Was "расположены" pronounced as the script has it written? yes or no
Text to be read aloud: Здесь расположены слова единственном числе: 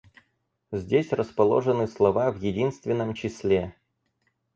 yes